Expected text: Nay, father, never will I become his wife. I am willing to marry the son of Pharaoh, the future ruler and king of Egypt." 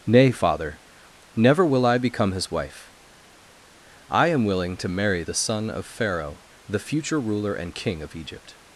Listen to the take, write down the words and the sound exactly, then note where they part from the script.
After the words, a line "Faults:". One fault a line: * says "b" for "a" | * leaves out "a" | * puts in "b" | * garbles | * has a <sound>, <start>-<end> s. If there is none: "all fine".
Nay, father, never will I become his wife. I am willing to marry the son of Pharaoh, the future ruler and king of Egypt."
Faults:
all fine